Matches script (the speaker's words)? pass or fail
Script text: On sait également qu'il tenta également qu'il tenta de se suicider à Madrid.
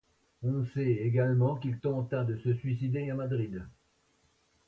fail